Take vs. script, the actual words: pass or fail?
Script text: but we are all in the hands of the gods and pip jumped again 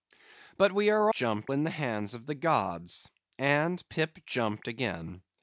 fail